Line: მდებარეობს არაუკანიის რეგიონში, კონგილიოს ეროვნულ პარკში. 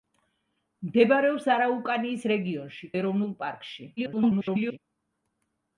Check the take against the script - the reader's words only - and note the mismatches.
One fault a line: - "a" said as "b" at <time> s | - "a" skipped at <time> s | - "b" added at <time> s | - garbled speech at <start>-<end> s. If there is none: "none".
- "კონგილიოს" skipped at 2.9 s
- garbled speech at 4.0-4.8 s